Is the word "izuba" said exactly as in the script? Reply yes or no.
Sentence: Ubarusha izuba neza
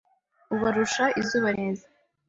yes